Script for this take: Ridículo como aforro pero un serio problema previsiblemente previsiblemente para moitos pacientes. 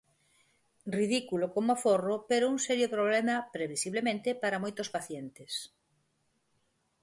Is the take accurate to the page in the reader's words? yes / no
no